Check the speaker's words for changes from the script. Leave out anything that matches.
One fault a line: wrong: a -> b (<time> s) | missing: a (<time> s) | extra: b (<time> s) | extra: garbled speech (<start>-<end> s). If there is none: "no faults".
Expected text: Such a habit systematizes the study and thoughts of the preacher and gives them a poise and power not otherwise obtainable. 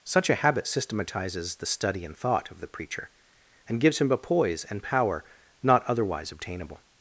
wrong: thoughts -> thought (2.2 s)
wrong: them -> him (4.0 s)